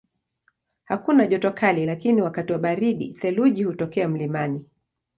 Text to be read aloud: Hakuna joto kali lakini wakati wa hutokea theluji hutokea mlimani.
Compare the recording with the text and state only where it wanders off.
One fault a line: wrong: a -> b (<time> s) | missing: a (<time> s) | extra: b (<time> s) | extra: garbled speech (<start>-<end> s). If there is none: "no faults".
wrong: hutokea -> baridi (2.6 s)